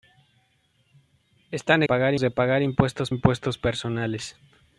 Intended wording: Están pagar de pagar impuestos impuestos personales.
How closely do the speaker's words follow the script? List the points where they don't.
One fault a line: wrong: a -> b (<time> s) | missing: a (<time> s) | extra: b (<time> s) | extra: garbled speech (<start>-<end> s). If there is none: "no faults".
no faults